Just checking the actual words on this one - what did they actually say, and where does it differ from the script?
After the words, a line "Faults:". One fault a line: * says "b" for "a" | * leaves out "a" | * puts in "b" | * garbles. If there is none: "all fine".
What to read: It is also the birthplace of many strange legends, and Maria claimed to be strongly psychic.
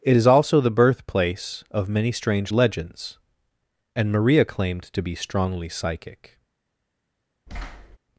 It is also the birthplace of many strange legends, and Maria claimed to be strongly psychic.
Faults:
all fine